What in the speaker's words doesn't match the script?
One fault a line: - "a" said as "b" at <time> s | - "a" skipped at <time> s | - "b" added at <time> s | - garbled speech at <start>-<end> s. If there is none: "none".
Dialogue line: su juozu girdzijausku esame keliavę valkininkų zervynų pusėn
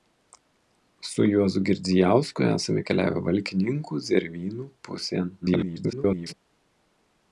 - garbled speech at 5.4-6.3 s